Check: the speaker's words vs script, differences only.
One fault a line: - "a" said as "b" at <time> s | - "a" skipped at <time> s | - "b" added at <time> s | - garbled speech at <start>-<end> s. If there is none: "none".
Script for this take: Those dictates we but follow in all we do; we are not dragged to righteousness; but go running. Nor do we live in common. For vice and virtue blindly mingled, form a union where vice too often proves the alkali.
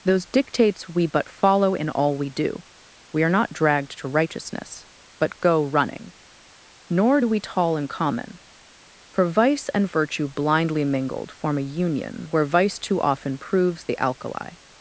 - "live" said as "tall" at 7.4 s